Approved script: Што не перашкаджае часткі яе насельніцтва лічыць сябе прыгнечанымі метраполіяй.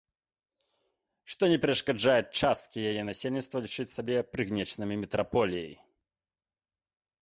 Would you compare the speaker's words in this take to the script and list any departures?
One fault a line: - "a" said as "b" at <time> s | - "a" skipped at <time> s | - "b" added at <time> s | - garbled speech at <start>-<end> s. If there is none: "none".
none